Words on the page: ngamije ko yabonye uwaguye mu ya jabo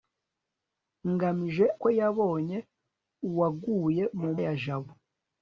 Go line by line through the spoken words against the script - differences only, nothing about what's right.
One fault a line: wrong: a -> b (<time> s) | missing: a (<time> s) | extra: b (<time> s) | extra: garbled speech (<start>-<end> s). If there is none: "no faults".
no faults